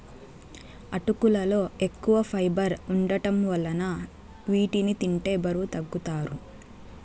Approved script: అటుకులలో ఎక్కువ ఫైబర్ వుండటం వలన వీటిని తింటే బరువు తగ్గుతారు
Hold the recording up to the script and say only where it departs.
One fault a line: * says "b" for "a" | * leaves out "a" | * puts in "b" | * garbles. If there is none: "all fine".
all fine